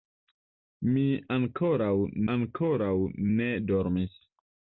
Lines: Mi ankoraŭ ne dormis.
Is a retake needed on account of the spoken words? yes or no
yes